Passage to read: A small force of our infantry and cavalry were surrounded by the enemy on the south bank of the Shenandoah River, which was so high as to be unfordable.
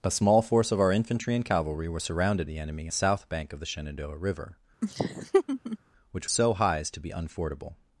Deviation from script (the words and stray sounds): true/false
true